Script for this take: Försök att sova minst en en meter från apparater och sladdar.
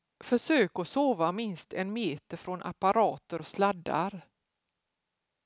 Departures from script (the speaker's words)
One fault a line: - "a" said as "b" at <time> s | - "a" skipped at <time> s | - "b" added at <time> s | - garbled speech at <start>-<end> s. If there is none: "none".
- "en" skipped at 1.9 s